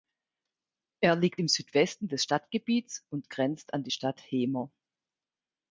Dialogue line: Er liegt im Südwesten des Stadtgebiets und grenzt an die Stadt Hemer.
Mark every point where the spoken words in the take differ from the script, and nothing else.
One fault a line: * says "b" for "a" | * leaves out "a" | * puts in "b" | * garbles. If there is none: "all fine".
all fine